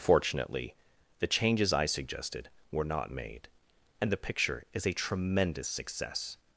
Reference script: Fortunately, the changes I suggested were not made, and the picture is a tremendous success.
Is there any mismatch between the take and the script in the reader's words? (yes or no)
no